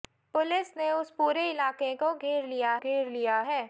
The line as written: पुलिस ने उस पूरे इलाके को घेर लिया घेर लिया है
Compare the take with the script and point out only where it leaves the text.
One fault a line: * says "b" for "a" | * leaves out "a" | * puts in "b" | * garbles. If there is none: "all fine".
all fine